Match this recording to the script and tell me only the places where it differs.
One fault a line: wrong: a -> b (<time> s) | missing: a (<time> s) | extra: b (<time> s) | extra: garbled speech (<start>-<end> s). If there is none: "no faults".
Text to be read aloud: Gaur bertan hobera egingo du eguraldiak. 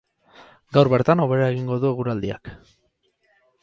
no faults